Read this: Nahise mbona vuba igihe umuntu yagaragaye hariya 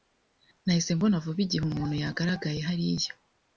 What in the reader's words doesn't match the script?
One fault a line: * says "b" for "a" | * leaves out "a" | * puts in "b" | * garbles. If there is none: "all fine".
all fine